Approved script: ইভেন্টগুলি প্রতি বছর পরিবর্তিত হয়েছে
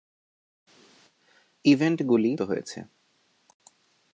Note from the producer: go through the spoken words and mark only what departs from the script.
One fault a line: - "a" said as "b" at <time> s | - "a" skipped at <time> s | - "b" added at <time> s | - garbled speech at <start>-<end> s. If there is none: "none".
- "প্রতি বছর পরিবর্তিত" skipped at 2.3 s